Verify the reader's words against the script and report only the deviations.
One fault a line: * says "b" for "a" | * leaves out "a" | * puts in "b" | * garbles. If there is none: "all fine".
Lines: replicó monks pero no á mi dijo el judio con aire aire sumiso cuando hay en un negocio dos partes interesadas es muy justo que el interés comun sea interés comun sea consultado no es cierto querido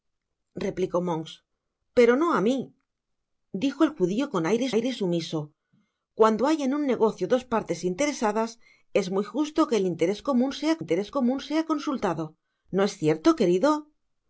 all fine